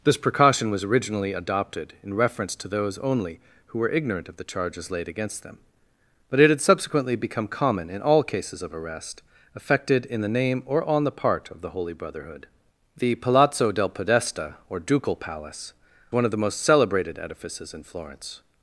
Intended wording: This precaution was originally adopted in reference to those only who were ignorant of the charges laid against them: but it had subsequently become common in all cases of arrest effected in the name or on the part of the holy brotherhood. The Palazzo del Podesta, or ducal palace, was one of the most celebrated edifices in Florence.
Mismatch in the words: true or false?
true